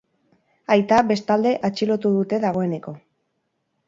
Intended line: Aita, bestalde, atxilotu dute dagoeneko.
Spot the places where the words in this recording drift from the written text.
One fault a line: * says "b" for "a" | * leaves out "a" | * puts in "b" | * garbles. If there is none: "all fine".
all fine